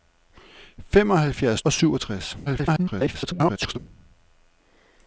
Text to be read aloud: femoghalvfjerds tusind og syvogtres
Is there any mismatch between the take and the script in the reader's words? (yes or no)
yes